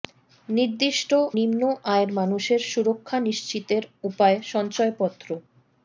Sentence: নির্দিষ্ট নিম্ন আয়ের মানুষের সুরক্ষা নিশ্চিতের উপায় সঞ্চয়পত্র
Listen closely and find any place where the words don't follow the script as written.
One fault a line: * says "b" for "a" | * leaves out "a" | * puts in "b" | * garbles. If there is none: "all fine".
all fine